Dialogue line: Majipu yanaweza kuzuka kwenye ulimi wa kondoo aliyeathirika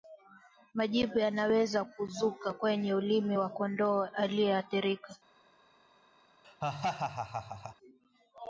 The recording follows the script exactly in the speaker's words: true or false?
true